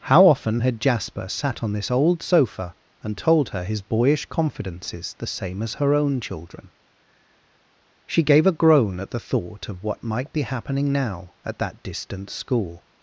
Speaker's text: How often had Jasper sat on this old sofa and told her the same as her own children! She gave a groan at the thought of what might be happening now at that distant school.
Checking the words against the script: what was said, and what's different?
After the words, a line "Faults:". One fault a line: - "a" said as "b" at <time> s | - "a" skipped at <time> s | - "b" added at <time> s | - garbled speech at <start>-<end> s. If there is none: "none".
How often had Jasper sat on this old sofa and told her his boyish confidences the same as her own children! She gave a groan at the thought of what might be happening now at that distant school.
Faults:
- "his boyish confidences" added at 3.6 s